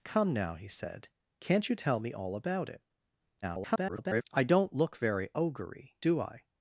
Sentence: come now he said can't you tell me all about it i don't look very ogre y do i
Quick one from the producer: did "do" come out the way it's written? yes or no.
yes